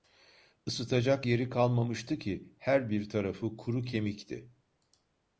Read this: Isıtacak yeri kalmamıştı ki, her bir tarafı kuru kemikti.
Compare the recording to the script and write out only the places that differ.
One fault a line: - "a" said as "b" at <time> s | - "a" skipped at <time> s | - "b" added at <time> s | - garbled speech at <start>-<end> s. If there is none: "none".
none